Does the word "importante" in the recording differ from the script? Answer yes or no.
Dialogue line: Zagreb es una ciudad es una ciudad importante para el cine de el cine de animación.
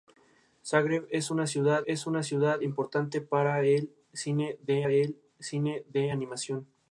no